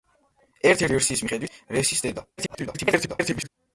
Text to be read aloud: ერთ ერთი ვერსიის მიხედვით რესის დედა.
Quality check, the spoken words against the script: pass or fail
fail